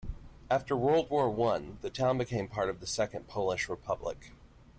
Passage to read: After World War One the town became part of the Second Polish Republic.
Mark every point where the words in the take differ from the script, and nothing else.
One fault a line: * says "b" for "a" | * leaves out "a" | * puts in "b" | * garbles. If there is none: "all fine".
all fine